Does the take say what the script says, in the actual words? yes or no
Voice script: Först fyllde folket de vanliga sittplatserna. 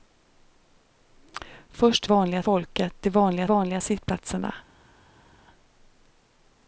no